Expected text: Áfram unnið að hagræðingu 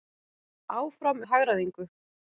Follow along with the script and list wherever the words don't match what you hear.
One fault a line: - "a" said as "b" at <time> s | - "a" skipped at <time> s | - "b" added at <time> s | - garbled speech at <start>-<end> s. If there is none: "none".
- "unnið" skipped at 1.2 s